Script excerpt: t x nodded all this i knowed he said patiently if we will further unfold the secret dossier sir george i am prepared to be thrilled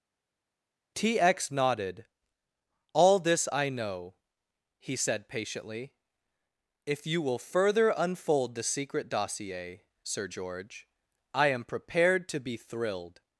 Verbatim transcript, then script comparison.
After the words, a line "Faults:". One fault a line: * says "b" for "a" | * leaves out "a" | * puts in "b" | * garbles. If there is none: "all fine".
t x nodded all this i know he said patiently if you will further unfold the secret dossier sir george i am prepared to be thrilled
Faults:
* says "know" for "knowed"
* says "you" for "we"